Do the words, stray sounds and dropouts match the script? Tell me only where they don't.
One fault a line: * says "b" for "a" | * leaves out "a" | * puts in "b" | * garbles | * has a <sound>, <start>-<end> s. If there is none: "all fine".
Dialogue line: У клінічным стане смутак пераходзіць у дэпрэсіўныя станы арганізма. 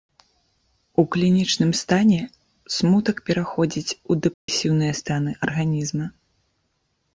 * has a dropout, 4.3-4.5 s